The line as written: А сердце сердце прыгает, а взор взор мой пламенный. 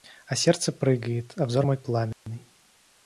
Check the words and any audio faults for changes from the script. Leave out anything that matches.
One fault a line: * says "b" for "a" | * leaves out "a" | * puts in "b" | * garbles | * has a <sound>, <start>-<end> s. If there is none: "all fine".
* leaves out "сердце"
* leaves out "взор"
* has a dropout, 2.1-2.3 s